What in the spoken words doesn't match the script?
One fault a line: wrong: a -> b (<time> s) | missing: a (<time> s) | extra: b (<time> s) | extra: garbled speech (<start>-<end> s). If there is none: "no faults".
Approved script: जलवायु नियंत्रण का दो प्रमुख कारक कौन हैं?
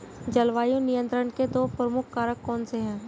wrong: का -> के (1.3 s)
extra: से (2.6 s)